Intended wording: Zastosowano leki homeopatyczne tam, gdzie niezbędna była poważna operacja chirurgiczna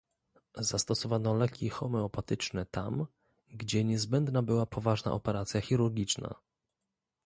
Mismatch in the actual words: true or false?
false